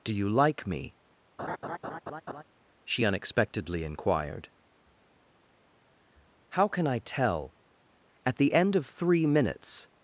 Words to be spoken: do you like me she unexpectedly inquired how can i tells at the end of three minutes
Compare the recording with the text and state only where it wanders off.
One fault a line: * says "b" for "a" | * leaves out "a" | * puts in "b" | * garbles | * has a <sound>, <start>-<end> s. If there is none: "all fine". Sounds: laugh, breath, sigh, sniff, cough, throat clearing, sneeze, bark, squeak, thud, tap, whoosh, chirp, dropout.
* has a laugh, 1.4-2.4 s
* says "tell" for "tells"